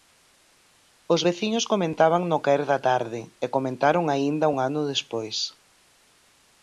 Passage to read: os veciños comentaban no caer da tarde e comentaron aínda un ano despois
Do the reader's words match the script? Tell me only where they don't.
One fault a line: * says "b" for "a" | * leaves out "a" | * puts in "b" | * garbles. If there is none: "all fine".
all fine